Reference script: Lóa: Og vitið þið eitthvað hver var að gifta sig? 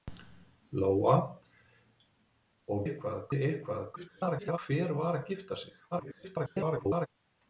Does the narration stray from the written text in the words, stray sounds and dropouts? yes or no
yes